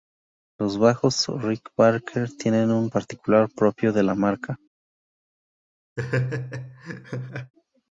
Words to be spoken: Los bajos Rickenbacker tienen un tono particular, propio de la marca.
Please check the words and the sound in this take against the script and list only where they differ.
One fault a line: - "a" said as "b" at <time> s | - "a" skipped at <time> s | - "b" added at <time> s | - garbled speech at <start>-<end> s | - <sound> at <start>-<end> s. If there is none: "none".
- "tono" skipped at 2.9 s
- laugh at 6.0-7.5 s